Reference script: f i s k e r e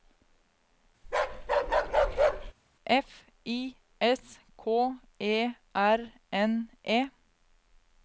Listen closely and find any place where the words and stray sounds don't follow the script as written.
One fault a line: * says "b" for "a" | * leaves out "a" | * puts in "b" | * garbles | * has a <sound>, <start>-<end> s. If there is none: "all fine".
* has a bark, 1.0-2.5 s
* puts in "n"